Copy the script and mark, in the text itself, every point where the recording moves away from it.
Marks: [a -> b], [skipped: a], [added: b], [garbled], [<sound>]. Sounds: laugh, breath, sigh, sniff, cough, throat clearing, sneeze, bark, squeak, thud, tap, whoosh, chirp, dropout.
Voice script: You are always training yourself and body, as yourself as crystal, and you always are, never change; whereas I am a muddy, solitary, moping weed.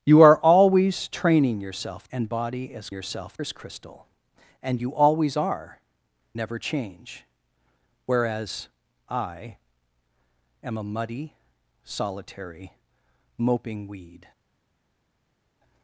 You are always training yourself and body, as yourself as crystal, and you always are, never change; whereas I am a muddy, solitary, moping weed.